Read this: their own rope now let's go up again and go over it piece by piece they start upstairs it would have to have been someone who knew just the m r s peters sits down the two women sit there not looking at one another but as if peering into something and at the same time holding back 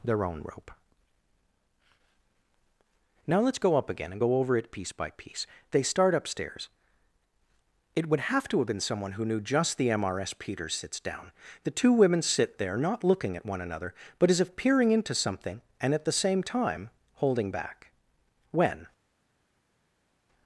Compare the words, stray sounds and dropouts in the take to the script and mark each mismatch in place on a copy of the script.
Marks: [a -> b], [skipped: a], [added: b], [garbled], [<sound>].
their own rope now let's go up again and go over it piece by piece they start upstairs it would have to have been someone who knew just the m r s peters sits down the two women sit there not looking at one another but as if peering into something and at the same time holding back [added: when]